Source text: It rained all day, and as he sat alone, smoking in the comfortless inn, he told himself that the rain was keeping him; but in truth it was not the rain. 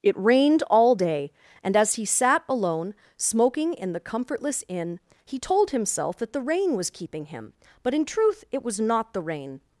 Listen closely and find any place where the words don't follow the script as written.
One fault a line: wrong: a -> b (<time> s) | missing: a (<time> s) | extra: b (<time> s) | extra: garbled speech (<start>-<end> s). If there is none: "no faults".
no faults